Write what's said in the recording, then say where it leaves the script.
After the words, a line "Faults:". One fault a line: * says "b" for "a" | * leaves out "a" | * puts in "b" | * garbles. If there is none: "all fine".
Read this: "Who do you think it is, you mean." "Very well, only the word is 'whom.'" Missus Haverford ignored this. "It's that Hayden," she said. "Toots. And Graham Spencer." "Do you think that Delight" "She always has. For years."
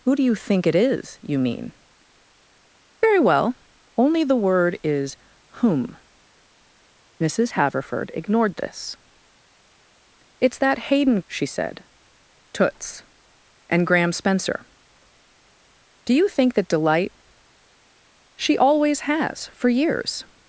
"Who do you think it is, you mean." "Very well, only the word is 'whom.'" Missus Haverford ignored this. "It's that Hayden," she said. "Toots. And Graham Spencer." "Do you think that Delight" "She always has. For years."
Faults:
all fine